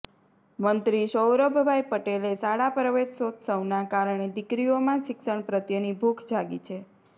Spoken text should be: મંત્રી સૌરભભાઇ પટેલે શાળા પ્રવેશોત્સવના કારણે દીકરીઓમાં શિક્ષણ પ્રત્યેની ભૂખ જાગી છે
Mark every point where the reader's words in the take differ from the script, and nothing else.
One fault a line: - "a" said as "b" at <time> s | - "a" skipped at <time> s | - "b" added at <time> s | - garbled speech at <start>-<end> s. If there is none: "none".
none